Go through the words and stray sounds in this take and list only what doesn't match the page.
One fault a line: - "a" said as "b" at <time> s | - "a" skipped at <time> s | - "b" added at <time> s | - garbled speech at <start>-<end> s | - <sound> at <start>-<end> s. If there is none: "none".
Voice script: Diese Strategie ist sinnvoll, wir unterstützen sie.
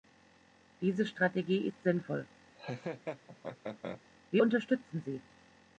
- laugh at 2.5-4.0 s